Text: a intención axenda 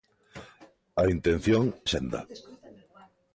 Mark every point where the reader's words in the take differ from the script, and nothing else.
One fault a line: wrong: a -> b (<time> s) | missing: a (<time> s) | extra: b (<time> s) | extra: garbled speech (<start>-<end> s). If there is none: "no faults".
no faults